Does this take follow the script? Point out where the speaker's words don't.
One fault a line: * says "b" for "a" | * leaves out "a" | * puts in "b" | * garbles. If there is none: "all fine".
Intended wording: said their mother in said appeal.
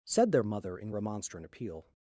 * says "remonstrant" for "said"